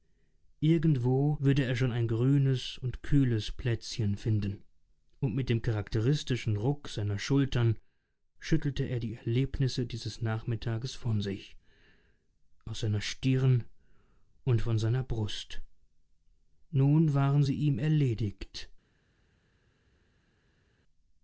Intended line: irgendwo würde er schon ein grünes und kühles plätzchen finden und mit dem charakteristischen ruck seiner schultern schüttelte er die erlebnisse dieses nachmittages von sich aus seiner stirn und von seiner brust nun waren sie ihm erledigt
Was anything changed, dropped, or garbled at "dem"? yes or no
no